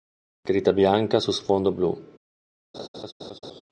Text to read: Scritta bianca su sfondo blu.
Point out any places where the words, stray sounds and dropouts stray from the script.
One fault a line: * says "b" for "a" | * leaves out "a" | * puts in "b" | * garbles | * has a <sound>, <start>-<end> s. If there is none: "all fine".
* has a laugh, 2.7-3.6 s